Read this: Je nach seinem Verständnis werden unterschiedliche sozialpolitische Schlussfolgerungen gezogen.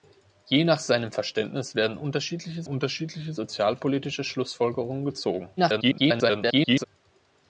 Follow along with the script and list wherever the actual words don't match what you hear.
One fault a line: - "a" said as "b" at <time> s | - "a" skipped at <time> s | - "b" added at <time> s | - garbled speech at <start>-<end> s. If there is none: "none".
- "unterschiedliche" added at 2.7 s
- garbled speech at 5.6-6.8 s